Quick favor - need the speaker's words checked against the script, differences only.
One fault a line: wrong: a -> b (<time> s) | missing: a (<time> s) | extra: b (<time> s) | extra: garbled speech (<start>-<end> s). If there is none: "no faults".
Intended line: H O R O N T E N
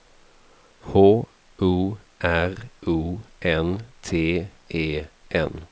no faults